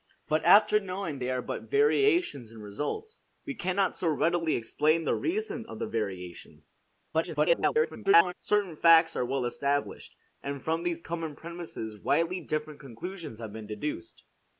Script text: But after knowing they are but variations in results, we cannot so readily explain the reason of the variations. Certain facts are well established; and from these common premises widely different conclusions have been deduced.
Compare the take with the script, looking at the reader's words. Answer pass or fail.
fail